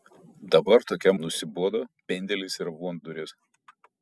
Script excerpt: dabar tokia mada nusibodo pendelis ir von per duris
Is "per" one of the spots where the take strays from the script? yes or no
yes